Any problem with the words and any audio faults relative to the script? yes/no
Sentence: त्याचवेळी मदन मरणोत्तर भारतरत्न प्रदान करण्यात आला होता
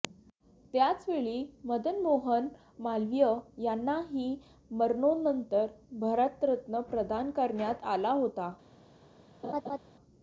yes